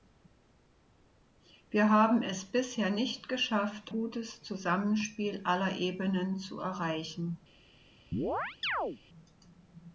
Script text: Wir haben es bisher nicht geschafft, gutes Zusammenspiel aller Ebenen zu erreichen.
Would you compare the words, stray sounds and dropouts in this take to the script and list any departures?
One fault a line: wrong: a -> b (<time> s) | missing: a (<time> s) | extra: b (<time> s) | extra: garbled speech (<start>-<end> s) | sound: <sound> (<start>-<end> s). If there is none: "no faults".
sound: chirp (8.1-9.0 s)